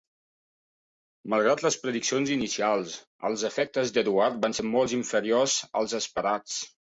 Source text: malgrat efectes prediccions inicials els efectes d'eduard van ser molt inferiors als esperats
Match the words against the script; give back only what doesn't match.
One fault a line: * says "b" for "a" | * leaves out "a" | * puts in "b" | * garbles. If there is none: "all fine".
* says "les" for "efectes"